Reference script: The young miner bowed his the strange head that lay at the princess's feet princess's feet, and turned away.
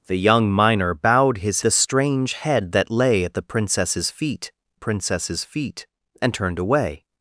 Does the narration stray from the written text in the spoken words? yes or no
no